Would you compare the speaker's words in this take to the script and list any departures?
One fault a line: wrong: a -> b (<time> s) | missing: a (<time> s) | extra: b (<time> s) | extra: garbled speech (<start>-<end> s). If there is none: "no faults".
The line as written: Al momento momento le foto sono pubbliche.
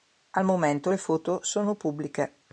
missing: momento (0.9 s)